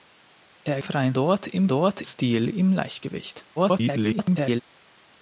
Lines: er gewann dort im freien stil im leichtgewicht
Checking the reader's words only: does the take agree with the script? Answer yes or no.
no